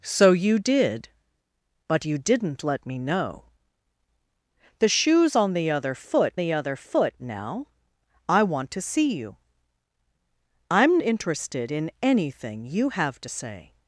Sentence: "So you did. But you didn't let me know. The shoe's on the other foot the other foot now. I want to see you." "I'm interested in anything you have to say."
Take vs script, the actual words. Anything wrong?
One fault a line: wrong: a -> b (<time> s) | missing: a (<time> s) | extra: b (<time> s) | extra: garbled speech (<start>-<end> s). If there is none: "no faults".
no faults